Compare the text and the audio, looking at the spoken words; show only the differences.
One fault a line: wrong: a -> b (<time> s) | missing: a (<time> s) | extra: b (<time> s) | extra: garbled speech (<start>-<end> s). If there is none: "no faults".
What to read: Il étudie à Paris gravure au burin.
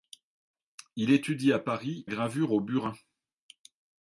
no faults